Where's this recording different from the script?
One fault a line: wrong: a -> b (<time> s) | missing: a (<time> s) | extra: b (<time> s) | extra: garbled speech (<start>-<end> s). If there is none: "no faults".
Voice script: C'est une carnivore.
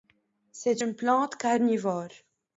extra: plante (0.9 s)